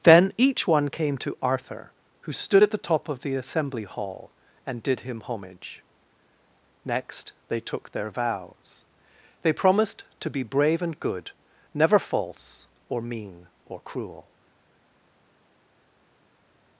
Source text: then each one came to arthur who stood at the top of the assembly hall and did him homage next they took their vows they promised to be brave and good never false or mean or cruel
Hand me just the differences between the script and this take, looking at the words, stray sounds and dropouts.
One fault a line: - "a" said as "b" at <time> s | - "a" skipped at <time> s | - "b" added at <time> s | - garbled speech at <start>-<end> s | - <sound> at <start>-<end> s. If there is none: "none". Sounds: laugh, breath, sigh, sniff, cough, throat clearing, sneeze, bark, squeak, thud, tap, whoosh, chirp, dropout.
none